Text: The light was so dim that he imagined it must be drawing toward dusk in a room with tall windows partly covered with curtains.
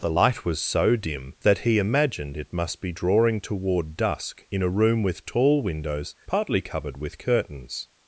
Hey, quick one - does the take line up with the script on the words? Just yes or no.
yes